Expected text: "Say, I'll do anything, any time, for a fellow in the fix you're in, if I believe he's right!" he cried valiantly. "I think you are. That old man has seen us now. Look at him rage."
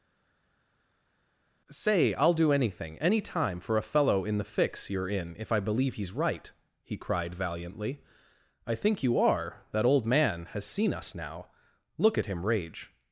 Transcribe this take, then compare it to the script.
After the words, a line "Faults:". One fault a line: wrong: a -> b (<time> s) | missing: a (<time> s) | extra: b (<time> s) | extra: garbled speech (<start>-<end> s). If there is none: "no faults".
"Say, I'll do anything, any time, for a fellow in the fix you're in, if I believe he's right!" he cried valiantly. "I think you are. That old man has seen us now. Look at him rage."
Faults:
no faults